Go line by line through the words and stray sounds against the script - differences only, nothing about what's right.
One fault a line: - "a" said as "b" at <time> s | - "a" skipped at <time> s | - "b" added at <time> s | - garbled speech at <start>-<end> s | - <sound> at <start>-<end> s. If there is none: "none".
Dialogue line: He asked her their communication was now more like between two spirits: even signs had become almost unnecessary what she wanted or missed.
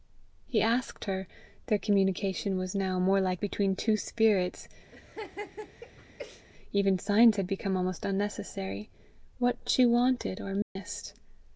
- laugh at 4.9-6.5 s
- dropout at 10.6-10.8 s